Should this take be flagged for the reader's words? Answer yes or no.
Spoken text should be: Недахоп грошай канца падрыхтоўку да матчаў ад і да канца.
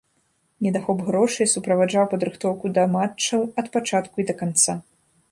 yes